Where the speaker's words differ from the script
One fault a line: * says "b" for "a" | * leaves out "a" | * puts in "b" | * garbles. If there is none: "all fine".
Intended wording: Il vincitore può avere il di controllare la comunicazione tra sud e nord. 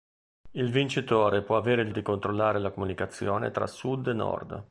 all fine